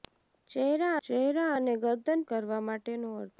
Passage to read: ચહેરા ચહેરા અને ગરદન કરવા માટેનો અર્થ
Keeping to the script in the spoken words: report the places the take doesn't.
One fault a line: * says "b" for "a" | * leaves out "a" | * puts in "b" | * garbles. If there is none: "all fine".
all fine